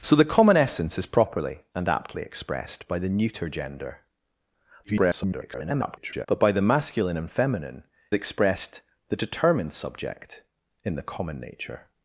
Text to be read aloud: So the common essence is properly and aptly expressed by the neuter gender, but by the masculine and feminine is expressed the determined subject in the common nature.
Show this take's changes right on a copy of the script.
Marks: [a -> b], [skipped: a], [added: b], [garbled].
So the common essence is properly and aptly expressed by the neuter gender, [garbled] but by the masculine and feminine [skipped: is] expressed the determined subject in the common nature.